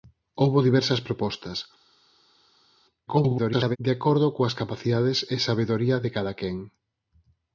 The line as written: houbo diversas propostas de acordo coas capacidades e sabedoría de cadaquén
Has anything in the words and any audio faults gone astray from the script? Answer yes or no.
yes